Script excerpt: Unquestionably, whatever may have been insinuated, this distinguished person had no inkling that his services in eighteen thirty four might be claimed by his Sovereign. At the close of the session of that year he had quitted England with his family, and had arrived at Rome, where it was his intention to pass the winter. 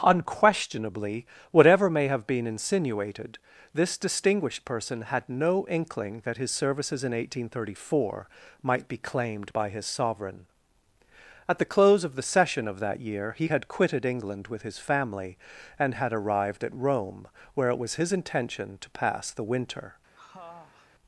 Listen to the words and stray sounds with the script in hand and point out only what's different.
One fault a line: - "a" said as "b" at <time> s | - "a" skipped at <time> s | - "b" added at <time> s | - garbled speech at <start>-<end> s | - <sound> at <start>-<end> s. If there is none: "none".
- sniff at 20.1-20.9 s